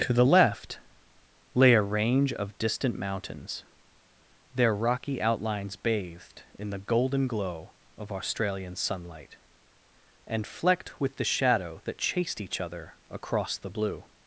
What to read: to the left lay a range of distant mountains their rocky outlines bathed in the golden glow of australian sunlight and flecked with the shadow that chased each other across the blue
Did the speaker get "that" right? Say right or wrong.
right